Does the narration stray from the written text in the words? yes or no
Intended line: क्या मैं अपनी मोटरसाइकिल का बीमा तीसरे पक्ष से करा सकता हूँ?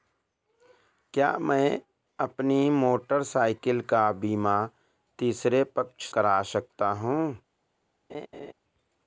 yes